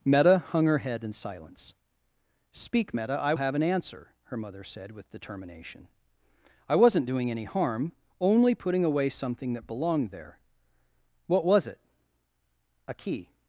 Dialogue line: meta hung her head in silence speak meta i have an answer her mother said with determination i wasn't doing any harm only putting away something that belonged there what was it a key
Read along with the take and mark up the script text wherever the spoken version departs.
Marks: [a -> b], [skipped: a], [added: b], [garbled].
meta hung her head in silence speak meta i have an answer her mother said with determination i wasn't doing any harm only putting away something that belonged there what was it a key